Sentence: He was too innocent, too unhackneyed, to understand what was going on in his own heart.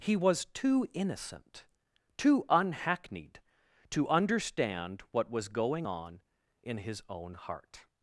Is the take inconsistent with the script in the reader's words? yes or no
no